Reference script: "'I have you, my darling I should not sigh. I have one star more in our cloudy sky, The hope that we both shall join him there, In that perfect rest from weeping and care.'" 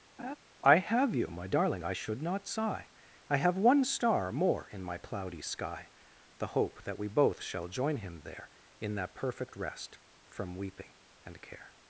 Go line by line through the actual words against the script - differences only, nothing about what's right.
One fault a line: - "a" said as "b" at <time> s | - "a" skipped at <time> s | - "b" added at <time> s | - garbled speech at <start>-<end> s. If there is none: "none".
- "our" said as "my" at 4.8 s